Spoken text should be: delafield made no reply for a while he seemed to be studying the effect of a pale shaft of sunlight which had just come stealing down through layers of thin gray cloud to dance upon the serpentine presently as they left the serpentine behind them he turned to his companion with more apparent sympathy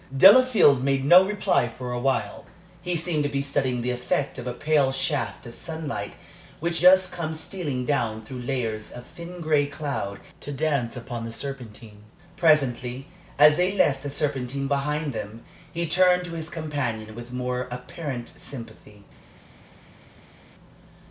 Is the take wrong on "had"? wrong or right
wrong